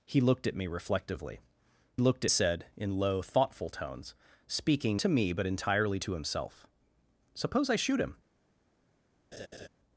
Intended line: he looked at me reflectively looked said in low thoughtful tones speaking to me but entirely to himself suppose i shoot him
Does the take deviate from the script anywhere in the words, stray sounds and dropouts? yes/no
yes